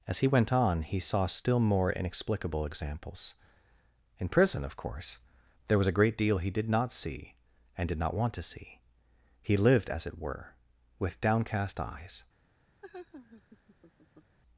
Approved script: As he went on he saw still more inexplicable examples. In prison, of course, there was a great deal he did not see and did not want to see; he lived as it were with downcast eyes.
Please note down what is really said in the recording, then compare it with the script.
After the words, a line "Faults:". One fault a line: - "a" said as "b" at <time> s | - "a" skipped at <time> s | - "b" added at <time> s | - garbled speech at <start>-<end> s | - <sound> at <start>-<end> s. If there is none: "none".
As he went on he saw still more inexplicable examples. In prison, of course, there was a great deal he did not see and did not want to see; he lived as it were with downcast eyes.
Faults:
- laugh at 12.8-14.4 s